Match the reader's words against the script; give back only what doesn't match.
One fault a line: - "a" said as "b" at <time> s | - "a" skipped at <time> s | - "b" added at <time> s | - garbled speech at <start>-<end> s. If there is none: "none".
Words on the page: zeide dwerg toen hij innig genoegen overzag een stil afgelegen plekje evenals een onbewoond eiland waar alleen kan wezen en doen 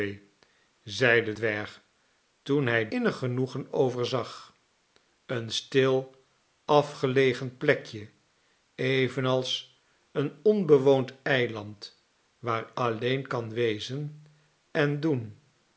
none